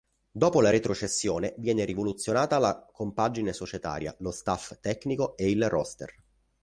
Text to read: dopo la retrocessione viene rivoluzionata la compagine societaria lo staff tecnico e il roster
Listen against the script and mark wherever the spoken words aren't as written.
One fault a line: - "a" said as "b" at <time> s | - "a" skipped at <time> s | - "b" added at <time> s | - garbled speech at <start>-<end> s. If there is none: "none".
none